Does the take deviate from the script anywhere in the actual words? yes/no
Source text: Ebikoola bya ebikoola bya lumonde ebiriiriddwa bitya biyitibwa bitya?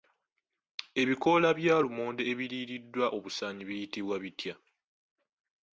yes